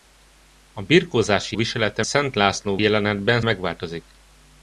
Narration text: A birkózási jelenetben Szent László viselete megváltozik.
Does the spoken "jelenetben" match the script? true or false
false